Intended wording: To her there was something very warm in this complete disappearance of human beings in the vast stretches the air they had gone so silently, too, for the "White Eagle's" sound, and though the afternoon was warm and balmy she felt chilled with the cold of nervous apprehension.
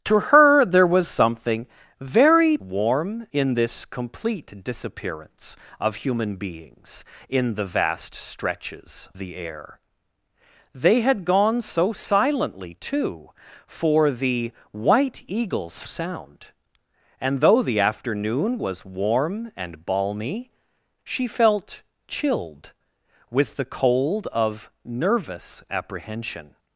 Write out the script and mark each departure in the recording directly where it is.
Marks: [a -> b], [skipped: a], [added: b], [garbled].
To her there was something very warm in this complete disappearance of human beings in the vast stretches the air they had gone so silently, too, for the "White Eagle's" sound, and though the afternoon was warm and balmy she felt chilled with the cold of nervous apprehension.